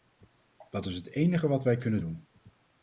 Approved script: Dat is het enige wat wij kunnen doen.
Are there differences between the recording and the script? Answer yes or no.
no